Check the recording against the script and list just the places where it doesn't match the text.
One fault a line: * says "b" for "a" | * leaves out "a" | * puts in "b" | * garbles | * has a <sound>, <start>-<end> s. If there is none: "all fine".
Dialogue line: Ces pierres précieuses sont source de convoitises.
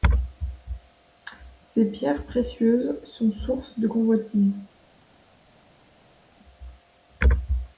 all fine